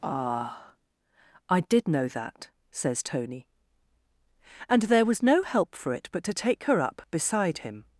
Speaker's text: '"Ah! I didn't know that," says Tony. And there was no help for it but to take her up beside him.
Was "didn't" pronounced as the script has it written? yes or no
no